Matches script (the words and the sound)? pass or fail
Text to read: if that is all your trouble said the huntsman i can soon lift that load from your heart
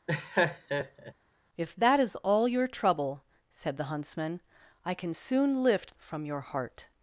fail